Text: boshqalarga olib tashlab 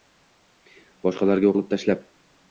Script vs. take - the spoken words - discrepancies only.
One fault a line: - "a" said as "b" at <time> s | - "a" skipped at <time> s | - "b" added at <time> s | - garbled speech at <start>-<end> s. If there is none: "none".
none